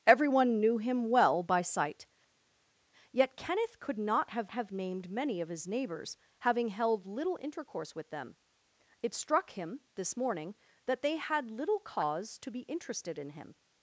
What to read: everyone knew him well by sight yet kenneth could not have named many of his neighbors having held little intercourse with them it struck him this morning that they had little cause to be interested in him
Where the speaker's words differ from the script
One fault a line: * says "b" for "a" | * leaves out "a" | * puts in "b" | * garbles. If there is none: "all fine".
* puts in "have"